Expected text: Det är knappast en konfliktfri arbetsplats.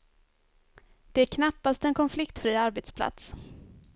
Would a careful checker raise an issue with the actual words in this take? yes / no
no